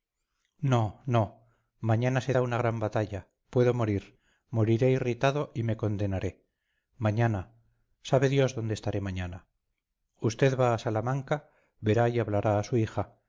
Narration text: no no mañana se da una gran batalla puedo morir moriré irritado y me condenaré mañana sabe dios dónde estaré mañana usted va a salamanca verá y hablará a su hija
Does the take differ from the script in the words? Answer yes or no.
no